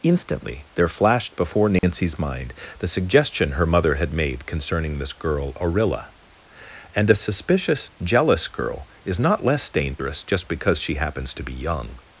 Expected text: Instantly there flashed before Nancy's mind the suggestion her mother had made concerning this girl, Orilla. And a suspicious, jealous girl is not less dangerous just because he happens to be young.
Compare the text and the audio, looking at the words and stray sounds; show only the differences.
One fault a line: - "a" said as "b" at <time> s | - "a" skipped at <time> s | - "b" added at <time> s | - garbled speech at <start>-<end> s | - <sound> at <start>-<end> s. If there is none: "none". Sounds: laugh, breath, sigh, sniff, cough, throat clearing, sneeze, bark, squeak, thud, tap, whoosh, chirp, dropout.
- dropout at 1.8-1.8 s
- "he" said as "she" at 10.8 s